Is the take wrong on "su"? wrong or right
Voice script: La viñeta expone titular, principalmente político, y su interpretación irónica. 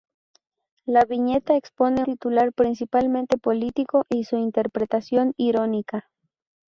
right